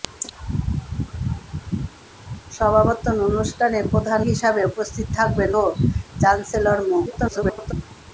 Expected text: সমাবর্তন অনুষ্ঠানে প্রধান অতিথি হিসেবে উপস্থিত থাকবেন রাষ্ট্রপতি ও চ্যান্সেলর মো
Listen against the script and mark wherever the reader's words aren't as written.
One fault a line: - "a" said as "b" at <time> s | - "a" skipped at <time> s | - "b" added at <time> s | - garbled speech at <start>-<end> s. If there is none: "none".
- "অতিথি" skipped at 4.2 s
- "রাষ্ট্রপতি" skipped at 5.5 s
- garbled speech at 7.1-7.7 s